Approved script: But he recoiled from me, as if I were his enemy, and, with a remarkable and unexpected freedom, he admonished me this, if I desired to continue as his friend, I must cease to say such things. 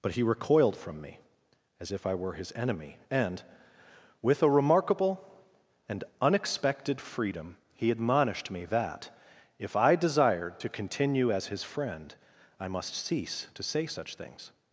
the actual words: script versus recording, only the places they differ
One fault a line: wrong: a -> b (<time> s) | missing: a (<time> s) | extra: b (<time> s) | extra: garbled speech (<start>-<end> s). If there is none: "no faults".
wrong: this -> that (8.7 s)